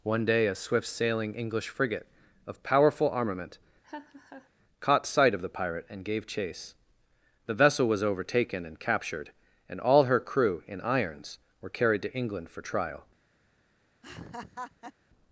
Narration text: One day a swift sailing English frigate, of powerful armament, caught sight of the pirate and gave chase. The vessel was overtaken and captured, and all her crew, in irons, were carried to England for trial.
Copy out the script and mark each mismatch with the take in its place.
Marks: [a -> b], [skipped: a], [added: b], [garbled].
One day a swift sailing English frigate, of powerful armament, caught sight of the pirate and gave chase. The vessel was overtaken and captured, and all her crew, in irons, were carried to England for trial.